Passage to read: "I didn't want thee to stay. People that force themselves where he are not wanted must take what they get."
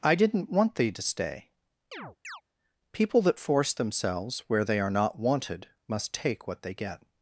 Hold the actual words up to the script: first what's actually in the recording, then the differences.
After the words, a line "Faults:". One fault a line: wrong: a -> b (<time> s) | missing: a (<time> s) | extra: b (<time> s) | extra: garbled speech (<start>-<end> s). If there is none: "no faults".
"I didn't want thee to stay. People that force themselves where they are not wanted must take what they get."
Faults:
wrong: he -> they (4.6 s)